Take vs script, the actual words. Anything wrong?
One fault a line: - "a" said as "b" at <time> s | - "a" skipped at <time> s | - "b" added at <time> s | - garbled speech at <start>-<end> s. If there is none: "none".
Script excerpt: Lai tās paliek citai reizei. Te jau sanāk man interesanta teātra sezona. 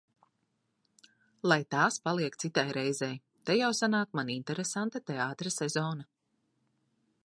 none